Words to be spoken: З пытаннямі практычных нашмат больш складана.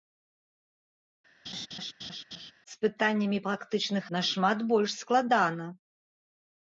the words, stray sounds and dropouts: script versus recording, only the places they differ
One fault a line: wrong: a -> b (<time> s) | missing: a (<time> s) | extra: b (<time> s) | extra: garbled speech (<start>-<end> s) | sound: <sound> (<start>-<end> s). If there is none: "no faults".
sound: laugh (1.4-2.5 s)